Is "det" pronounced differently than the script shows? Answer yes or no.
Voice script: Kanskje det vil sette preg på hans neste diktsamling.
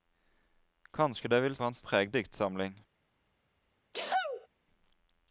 no